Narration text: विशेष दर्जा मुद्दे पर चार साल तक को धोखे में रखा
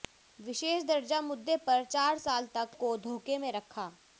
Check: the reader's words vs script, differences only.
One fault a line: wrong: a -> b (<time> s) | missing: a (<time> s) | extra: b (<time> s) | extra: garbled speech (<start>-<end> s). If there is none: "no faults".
no faults